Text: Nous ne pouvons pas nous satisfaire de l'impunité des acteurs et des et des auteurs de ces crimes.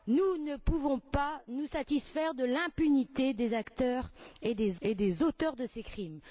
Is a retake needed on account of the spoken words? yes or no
no